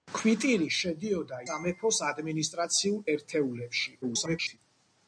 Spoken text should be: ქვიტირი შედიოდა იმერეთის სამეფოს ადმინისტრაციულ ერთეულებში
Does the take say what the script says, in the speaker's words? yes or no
no